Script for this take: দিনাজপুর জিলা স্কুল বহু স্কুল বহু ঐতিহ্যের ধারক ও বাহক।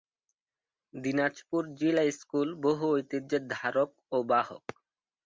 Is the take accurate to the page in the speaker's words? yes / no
no